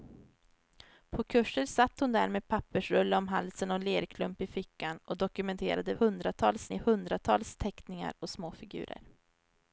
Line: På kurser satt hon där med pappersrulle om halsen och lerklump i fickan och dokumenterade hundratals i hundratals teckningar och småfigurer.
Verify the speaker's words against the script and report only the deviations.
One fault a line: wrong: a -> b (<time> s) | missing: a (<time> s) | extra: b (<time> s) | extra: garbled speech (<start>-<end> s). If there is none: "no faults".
no faults